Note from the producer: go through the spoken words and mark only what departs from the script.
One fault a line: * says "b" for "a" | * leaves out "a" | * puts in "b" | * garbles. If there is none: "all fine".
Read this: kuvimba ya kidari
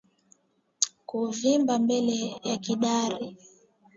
* puts in "mbele"